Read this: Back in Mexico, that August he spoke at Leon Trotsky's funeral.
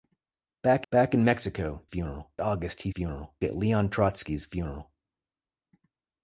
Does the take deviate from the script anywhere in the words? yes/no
yes